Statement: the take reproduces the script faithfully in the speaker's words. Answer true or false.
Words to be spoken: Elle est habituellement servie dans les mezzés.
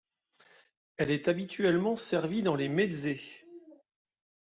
true